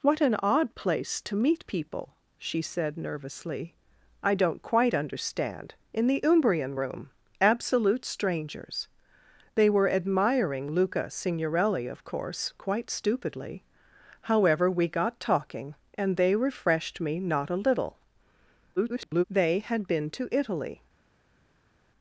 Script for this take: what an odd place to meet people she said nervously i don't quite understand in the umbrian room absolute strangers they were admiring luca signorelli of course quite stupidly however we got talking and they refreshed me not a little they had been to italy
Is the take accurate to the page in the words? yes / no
no